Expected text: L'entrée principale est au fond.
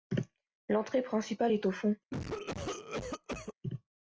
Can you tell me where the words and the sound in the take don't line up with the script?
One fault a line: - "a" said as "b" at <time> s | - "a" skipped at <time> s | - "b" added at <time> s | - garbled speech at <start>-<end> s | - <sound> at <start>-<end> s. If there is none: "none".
- cough at 2.1-3.5 s